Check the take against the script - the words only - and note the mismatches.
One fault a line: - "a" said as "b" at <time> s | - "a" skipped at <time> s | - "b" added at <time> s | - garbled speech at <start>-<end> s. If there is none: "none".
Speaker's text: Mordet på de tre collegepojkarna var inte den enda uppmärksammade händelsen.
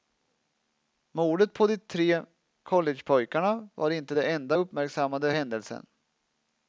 none